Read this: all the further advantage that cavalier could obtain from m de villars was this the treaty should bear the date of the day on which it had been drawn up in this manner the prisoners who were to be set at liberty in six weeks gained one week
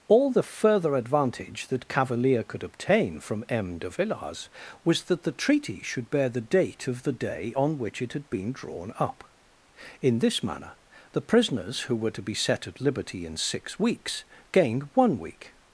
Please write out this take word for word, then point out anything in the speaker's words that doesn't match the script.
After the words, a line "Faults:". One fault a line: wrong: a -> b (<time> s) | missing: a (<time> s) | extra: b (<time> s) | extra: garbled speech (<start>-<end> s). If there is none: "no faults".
all the further advantage that cavalier could obtain from m de villars was that the treaty should bear the date of the day on which it had been drawn up in this manner the prisoners who were to be set at liberty in six weeks gained one week
Faults:
wrong: this -> that (5.0 s)